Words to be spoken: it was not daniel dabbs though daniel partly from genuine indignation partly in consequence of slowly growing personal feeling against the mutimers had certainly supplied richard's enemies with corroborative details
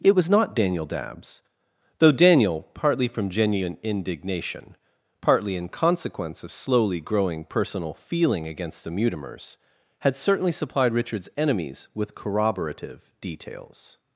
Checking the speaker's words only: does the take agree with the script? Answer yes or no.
yes